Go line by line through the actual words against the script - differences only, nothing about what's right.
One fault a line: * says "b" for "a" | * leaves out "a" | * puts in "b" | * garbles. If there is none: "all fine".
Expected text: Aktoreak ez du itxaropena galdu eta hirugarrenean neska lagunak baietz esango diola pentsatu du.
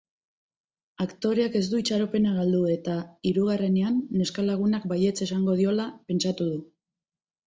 all fine